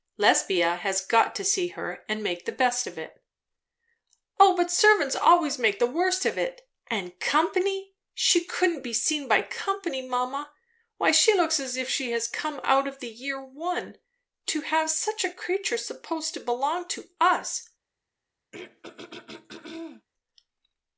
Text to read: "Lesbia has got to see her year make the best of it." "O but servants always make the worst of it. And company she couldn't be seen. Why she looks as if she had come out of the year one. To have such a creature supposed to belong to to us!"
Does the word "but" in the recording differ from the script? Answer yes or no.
no